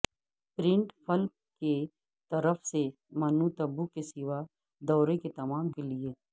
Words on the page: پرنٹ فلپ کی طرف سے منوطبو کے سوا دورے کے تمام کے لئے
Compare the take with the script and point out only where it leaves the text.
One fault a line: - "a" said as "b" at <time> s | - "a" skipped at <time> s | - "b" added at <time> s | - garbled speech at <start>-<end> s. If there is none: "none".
none